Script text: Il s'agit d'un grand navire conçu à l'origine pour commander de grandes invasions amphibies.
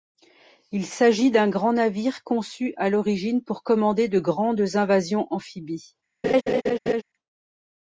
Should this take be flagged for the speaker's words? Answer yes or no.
no